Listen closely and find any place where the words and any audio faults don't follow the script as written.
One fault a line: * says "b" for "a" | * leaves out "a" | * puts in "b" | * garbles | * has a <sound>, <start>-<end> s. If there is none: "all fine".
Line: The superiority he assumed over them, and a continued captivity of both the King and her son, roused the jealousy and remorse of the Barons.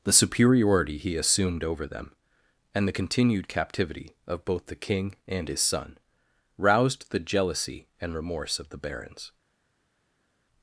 * says "the" for "a"
* says "his" for "her"